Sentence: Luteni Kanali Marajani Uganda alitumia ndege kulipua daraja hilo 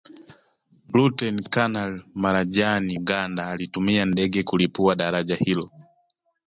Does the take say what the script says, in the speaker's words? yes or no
yes